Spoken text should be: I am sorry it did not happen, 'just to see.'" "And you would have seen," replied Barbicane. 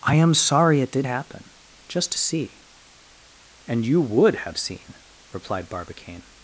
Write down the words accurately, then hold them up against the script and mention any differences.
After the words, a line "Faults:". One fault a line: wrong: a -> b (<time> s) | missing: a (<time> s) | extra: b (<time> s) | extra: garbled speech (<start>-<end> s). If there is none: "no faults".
I am sorry it did happen, 'just to see.'" "And you would have seen," replied Barbicane.
Faults:
missing: not (1.1 s)